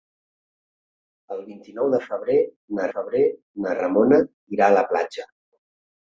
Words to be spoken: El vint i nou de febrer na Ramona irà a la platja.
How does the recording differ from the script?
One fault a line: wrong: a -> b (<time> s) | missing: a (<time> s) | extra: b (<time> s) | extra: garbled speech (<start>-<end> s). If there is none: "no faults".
extra: febrer na (2.9 s)